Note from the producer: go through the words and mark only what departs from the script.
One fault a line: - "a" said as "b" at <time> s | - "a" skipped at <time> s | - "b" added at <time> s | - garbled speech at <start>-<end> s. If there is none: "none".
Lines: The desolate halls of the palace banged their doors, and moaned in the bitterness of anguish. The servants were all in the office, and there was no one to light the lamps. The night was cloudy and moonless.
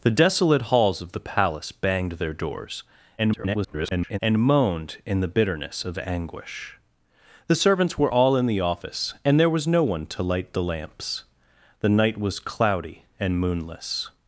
- garbled speech at 3.2-4.2 s